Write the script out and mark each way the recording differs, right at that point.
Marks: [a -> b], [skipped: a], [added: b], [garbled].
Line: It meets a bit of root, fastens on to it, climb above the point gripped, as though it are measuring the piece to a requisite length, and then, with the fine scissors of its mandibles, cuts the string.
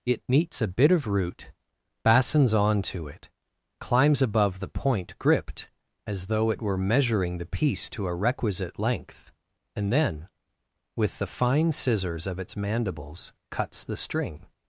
It meets a bit of root, fastens on to it, [climb -> climbs] above the point gripped, as though it [are -> were] measuring the piece to a requisite length, and then, with the fine scissors of its mandibles, cuts the string.